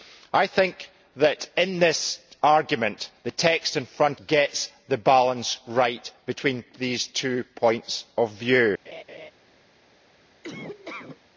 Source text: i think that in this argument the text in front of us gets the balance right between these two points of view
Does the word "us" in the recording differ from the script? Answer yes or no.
yes